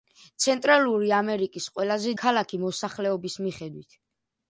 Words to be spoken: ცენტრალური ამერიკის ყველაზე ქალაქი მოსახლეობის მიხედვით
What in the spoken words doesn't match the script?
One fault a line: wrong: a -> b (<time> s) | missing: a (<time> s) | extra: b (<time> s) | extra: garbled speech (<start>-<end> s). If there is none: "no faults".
no faults